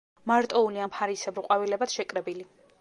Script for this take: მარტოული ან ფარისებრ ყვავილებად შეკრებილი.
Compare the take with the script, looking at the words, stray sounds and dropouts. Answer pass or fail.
pass